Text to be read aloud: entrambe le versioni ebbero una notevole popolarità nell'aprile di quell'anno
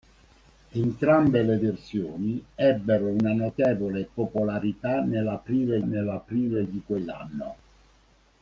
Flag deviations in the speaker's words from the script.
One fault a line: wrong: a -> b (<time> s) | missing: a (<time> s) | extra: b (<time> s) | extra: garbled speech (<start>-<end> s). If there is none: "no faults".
extra: nell'aprile (5.8 s)